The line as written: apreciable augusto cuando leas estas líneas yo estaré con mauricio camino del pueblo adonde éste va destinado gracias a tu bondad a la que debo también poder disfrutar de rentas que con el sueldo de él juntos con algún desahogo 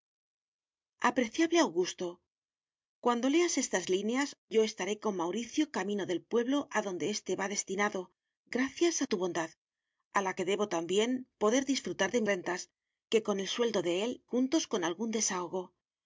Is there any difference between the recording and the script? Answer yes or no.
no